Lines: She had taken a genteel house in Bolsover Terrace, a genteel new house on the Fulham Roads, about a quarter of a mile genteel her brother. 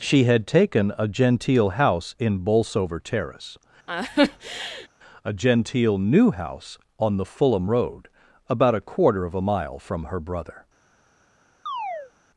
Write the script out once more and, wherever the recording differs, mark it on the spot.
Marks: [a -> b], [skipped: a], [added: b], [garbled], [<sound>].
She had taken a genteel house in Bolsover Terrace, [laugh] a genteel new house on the Fulham [Roads, -> Road] about a quarter of a mile [genteel -> from] her brother. [chirp]